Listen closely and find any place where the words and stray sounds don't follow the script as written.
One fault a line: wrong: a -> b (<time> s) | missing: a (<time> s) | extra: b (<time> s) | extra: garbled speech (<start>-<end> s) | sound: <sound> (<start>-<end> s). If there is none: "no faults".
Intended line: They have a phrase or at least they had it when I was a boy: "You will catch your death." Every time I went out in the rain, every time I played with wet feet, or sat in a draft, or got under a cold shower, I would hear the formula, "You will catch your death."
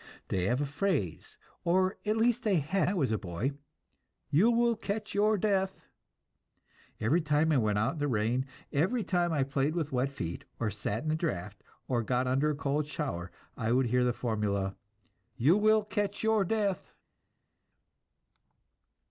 missing: it when (2.9 s)